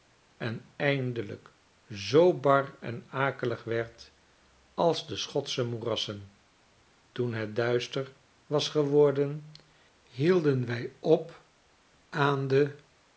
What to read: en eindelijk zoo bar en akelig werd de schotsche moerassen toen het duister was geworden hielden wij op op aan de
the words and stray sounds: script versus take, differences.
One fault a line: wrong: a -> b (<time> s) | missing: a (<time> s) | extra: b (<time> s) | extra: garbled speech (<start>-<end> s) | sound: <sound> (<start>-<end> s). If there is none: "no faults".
extra: als (4.7 s)
missing: op (11.4 s)